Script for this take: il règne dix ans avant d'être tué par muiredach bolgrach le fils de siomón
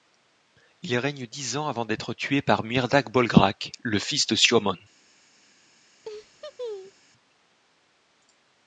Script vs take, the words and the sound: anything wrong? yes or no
yes